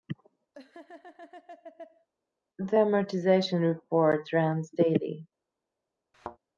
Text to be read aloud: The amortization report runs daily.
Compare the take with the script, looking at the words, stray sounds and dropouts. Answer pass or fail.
fail